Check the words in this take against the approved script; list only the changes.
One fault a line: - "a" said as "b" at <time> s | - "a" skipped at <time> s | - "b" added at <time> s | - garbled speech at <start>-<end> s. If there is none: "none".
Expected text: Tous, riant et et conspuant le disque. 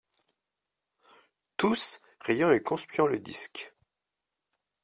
- "et" skipped at 2.6 s